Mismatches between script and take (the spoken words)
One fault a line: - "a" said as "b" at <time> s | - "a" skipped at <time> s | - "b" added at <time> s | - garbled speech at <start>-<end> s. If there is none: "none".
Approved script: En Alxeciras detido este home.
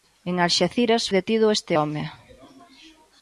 none